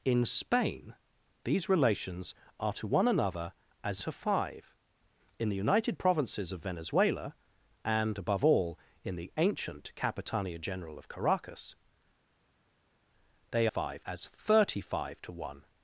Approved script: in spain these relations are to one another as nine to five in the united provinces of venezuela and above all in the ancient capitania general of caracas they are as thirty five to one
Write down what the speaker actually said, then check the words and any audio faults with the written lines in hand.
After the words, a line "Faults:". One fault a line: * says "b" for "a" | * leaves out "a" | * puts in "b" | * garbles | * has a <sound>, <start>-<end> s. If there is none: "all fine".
in spain these relations are to one another as to five in the united provinces of venezuela and above all in the ancient capitania general of caracas they five as thirty five to one
Faults:
* leaves out "nine"
* says "five" for "are"